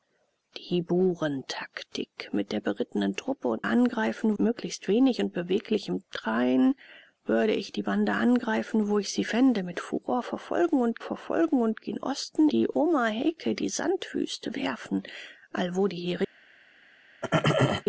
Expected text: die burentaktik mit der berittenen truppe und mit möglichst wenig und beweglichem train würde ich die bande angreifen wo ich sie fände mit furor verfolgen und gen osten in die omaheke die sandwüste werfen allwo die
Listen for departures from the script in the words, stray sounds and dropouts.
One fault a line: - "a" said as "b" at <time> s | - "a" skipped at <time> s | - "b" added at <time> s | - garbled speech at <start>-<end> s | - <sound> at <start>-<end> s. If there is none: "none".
- "mit" said as "angreifen" at 3.6 s
- "verfolgen und" added at 11.0 s
- "in" skipped at 12.5 s
- throat clearing at 17.2-17.8 s